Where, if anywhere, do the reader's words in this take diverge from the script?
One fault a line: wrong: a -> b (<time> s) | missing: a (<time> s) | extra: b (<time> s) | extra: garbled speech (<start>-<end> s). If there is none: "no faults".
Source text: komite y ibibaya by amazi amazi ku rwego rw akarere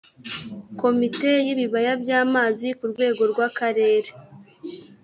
missing: amazi (2.7 s)